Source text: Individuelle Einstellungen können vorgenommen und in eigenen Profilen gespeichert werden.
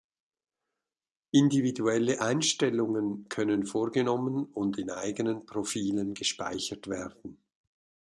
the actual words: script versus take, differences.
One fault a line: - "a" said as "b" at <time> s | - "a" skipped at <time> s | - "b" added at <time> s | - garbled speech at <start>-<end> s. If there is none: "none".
none